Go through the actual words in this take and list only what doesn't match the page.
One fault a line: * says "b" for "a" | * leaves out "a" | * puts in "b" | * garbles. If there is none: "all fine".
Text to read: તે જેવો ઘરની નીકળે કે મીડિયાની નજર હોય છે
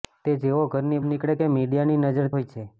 all fine